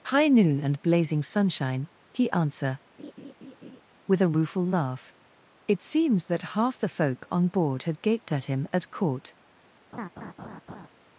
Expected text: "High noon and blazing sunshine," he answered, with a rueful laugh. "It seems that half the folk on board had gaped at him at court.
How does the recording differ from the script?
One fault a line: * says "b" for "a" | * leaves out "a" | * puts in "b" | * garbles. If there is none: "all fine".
* says "answer" for "answered"